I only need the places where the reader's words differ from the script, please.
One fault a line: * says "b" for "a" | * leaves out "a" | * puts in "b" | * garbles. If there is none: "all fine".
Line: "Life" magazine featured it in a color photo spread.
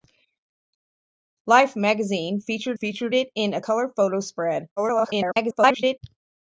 * puts in "featured"
* garbles